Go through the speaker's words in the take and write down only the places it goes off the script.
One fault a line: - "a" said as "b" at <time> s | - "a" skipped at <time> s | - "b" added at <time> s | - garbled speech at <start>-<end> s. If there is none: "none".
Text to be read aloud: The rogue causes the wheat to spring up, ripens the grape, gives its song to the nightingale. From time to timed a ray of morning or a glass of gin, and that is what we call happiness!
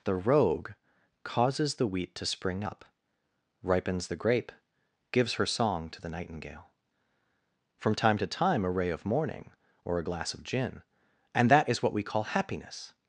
- "its" said as "her" at 5.3 s
- "timed" said as "time" at 8.3 s